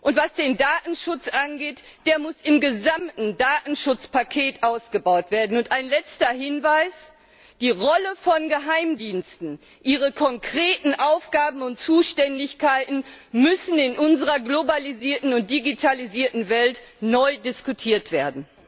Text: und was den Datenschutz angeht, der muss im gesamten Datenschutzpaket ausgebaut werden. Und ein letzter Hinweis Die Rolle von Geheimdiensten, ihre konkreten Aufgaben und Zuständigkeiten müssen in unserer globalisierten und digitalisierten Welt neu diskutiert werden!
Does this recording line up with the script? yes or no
yes